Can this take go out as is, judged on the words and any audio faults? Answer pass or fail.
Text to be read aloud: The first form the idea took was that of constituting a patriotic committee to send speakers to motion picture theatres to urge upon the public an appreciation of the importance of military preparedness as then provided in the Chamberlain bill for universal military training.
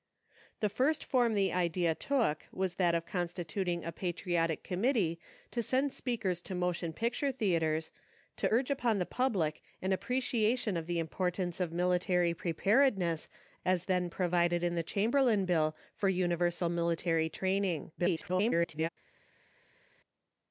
fail